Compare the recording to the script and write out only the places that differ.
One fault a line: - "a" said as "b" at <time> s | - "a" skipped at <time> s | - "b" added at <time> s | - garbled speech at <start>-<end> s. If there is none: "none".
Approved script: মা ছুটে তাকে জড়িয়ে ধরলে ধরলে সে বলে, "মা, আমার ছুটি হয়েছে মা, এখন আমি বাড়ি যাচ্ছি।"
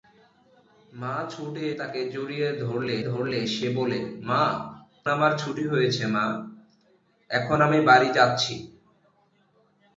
none